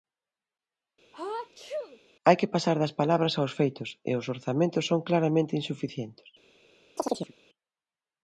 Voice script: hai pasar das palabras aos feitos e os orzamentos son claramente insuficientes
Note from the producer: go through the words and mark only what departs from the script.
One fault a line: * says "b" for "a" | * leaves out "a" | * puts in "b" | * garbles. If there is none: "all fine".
* puts in "que"